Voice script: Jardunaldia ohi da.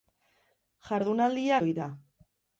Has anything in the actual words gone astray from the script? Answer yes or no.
no